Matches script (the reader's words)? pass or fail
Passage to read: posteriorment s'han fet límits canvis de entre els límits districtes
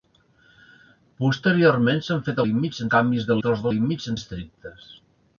pass